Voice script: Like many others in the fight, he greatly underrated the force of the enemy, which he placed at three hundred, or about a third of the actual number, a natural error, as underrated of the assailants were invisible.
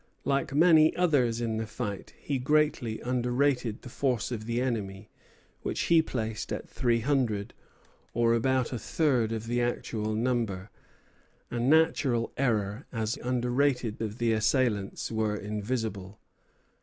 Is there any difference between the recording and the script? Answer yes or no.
no